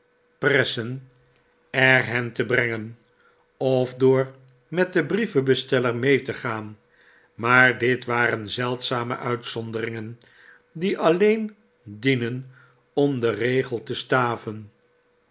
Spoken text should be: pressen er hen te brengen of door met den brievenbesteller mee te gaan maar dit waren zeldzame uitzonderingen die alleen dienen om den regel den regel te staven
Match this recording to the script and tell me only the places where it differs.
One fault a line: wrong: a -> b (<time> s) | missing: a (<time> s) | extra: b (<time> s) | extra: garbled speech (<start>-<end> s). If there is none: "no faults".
missing: den regel (13.8 s)